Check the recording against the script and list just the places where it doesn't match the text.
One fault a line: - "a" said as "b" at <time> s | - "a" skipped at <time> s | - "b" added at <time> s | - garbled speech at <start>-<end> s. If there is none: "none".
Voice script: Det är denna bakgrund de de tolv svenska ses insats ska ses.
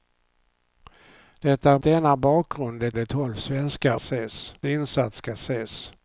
none